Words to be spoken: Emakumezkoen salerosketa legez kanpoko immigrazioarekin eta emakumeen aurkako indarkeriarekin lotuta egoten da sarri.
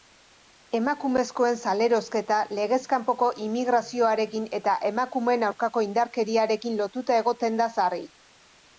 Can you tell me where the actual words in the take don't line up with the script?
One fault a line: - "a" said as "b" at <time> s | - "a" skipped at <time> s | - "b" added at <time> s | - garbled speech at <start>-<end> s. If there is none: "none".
none